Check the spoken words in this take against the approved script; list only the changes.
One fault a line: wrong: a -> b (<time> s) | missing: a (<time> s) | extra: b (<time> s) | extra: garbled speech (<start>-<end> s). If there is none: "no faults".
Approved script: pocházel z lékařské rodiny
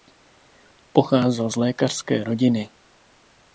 no faults